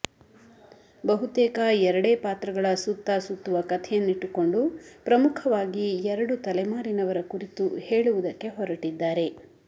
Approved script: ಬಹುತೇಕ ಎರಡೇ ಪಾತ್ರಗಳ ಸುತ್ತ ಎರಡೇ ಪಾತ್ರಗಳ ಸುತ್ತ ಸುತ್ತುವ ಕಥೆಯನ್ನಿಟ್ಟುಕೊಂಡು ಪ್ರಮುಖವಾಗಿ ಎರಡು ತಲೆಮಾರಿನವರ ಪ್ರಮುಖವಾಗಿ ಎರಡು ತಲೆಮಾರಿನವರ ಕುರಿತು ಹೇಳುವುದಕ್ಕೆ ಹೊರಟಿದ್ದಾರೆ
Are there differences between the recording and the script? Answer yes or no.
yes